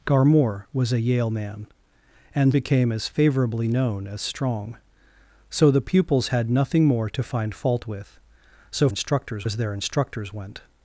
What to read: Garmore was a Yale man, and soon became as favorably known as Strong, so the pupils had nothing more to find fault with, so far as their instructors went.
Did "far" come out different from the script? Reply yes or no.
yes